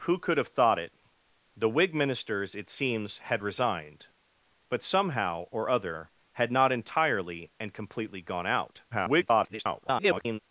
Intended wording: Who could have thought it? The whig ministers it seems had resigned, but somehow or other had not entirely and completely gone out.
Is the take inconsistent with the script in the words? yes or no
yes